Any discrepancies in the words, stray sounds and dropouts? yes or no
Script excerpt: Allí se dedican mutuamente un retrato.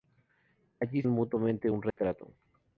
yes